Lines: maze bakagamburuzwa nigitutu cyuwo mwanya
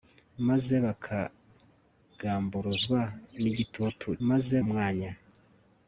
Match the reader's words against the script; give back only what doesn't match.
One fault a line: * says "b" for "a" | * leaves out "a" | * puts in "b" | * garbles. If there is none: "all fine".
* says "maze" for "cyuwo"